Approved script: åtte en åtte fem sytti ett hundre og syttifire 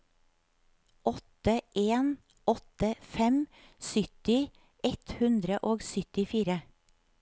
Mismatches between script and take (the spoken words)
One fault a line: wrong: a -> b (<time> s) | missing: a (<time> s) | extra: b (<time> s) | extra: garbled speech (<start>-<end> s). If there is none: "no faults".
no faults